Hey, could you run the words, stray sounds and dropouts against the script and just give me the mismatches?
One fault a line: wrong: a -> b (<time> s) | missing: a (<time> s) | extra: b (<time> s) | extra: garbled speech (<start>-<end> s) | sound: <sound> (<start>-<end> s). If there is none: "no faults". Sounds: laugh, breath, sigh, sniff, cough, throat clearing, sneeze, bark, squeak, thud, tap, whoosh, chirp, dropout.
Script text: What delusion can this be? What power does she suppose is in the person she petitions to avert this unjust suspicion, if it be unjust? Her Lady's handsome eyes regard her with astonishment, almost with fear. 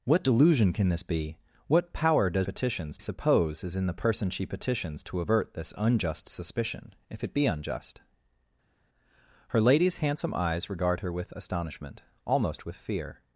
wrong: she -> petitions (2.4 s)